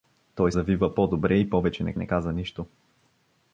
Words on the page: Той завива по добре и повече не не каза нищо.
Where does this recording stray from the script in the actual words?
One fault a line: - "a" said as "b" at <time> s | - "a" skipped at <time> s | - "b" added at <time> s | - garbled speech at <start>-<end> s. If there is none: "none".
none